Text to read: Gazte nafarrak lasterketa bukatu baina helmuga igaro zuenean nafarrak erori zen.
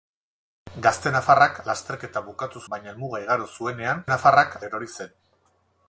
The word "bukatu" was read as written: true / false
true